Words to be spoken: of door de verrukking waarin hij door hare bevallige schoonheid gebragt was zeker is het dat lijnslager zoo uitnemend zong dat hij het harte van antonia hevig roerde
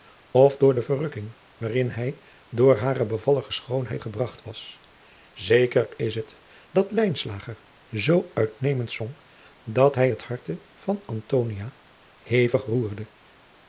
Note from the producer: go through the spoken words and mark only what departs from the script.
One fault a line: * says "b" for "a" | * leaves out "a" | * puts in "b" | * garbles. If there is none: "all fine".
all fine